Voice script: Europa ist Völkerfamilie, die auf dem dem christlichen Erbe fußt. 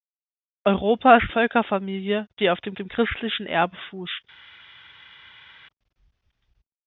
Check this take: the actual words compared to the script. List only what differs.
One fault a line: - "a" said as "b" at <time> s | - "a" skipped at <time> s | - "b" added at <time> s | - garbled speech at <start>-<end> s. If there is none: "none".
none